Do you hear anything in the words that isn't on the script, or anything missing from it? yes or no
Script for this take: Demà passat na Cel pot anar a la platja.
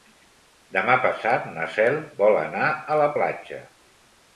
yes